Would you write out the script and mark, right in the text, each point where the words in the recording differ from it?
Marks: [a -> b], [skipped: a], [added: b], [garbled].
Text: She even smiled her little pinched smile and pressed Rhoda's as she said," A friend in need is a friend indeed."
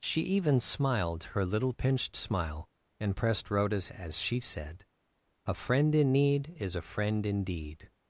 She even smiled her little pinched smile and pressed Rhoda's as she said," A friend in need is a friend indeed."